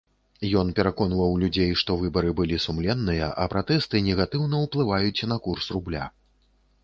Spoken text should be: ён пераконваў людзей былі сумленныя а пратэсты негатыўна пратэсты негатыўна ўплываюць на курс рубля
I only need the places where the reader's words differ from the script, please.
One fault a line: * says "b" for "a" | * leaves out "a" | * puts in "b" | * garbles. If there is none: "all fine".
* puts in "што выбары"
* leaves out "пратэсты негатыўна"